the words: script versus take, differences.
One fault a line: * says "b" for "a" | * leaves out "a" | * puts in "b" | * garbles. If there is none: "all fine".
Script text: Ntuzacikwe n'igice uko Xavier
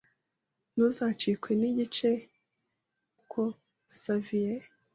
all fine